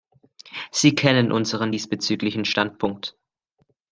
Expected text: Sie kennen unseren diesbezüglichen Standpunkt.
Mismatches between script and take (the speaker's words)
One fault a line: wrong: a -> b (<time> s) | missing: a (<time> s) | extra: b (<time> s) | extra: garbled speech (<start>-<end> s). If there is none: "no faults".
no faults